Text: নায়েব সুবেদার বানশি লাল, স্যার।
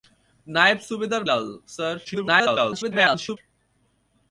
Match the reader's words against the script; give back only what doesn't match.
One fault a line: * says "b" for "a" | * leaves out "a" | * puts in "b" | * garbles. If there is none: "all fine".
* leaves out "বানশি"
* garbles